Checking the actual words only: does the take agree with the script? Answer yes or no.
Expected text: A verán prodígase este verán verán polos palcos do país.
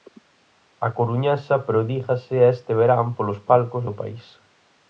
no